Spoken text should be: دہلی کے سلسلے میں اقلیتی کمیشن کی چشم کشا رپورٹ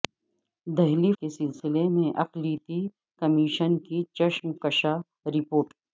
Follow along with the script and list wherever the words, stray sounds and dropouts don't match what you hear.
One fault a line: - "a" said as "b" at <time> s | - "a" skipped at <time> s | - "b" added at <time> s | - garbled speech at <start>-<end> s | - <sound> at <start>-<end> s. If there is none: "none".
none